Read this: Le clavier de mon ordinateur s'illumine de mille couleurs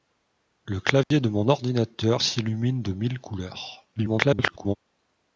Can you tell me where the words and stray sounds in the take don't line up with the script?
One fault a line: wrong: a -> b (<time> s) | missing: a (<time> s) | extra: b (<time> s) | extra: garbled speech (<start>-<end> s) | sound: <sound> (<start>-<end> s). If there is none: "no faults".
sound: dropout (1.0-1.1 s)
extra: garbled speech (4.0-4.8 s)